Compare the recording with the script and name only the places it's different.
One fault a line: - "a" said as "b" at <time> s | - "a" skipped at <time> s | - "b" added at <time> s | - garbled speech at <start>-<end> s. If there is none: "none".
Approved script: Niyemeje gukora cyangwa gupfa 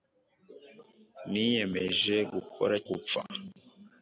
- "cyangwa" skipped at 2.8 s